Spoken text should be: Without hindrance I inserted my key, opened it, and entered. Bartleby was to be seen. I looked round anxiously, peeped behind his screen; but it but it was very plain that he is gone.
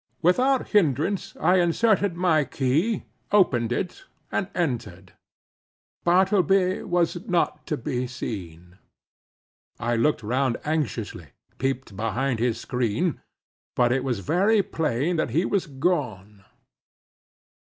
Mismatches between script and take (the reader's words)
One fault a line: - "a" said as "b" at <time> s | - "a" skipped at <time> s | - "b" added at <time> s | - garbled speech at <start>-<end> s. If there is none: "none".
- "not" added at 7.3 s
- "but it" skipped at 14.0 s
- "is" said as "was" at 15.5 s